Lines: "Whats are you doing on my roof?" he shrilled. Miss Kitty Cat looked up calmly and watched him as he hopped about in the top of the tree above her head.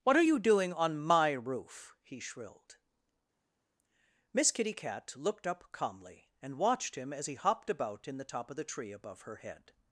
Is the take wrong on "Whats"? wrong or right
wrong